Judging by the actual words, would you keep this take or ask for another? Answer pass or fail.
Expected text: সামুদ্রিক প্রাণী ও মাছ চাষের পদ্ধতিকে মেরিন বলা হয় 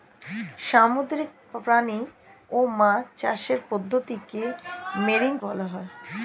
pass